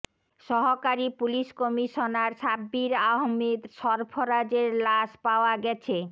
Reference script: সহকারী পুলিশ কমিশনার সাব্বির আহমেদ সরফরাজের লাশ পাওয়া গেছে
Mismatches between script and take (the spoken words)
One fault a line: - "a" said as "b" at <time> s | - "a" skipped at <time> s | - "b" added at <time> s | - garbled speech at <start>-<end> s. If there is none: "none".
none